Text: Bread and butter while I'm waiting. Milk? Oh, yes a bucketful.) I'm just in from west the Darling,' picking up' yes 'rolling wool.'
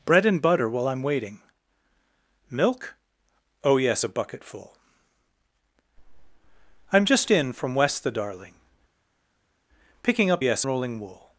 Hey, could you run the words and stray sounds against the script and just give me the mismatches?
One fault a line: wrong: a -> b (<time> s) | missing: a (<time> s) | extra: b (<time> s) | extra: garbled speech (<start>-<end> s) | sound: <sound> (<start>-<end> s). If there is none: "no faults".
no faults